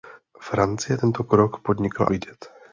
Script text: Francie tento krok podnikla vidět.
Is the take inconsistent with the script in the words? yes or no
no